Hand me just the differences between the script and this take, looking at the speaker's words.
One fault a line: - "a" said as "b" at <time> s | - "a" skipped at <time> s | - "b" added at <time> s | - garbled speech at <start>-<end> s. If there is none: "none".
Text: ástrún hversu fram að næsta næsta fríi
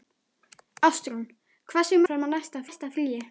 none